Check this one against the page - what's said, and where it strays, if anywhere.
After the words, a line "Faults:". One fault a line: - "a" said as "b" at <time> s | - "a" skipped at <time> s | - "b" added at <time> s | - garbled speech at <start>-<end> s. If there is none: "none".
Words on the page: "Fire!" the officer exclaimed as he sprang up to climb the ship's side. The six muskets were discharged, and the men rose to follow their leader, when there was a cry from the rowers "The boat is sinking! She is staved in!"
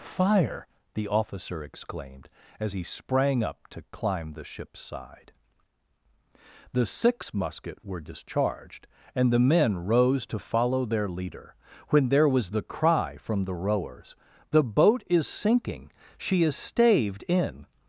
"Fire!" the officer exclaimed as he sprang up to climb the ship's side. The six musket were discharged, and the men rose to follow their leader, when there was the cry from the rowers "The boat is sinking! She is staved in!"
Faults:
- "muskets" said as "musket" at 7.3 s
- "a" said as "the" at 12.5 s